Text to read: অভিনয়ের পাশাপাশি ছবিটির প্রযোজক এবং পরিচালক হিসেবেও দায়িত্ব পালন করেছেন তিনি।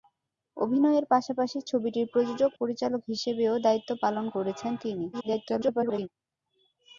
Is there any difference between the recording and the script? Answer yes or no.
yes